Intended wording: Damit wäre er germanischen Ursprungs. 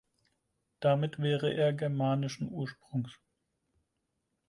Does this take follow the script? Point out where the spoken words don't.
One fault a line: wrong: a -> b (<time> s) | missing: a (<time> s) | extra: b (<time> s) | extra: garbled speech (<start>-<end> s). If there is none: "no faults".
no faults